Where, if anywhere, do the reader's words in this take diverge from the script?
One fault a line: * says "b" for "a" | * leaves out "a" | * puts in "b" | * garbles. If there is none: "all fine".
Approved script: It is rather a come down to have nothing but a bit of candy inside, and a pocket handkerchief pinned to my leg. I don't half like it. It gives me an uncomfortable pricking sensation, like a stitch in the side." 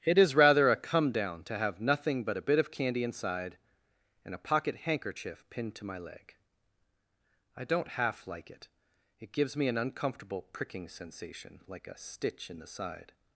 all fine